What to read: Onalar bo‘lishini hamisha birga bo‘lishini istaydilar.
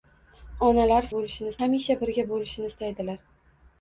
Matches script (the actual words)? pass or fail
pass